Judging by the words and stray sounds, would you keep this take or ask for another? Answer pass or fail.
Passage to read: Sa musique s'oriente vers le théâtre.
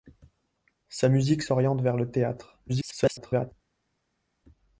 fail